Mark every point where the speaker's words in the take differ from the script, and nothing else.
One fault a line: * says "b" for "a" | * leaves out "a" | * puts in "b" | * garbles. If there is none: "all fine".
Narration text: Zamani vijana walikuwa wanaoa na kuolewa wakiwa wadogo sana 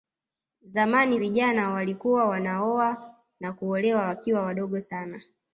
all fine